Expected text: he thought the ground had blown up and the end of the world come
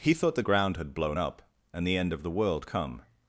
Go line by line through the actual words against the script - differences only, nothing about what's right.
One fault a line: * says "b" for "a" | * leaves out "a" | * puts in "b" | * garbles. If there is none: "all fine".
all fine